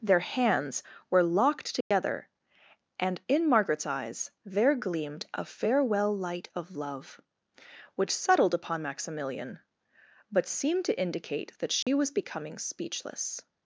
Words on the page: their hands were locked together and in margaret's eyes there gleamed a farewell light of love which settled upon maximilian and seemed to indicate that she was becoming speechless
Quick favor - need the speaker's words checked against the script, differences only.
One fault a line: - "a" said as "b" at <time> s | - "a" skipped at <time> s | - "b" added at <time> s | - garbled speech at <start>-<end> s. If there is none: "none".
- "and" said as "but" at 10.3 s